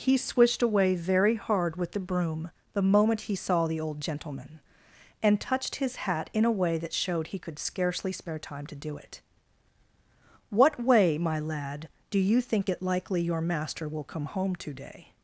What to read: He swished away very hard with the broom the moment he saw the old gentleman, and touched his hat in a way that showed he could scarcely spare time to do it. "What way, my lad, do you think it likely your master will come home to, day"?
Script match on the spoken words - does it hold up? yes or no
yes